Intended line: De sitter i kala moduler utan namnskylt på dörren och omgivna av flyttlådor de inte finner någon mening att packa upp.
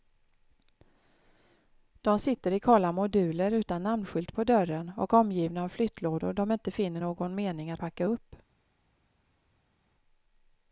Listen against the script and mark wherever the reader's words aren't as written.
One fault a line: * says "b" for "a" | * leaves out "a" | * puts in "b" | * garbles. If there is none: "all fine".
all fine